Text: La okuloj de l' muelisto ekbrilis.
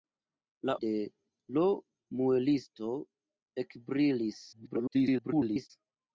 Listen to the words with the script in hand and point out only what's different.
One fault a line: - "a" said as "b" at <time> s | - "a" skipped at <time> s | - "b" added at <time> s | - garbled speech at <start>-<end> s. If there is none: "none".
- "okuloj" skipped at 0.8 s
- garbled speech at 4.5-5.7 s